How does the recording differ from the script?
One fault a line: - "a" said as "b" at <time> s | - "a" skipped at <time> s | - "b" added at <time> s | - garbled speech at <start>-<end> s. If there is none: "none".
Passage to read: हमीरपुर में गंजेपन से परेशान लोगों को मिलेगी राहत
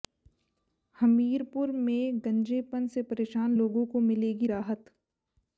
none